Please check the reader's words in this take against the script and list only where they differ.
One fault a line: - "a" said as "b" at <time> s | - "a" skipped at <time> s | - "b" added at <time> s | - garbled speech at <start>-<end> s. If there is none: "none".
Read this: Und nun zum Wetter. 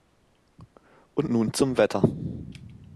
none